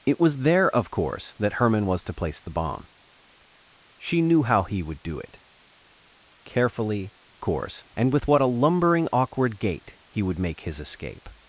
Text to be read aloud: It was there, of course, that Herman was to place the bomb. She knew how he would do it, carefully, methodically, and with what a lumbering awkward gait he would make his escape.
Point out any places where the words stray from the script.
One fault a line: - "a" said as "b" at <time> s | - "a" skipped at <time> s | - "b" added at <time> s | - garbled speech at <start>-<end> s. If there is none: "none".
- "methodically" said as "course" at 7.4 s